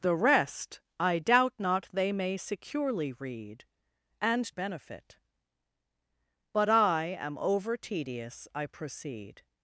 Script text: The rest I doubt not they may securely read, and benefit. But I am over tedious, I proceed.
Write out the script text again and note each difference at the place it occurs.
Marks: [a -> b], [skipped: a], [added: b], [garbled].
The rest I doubt not they may securely read, and benefit. But I am over tedious, I proceed.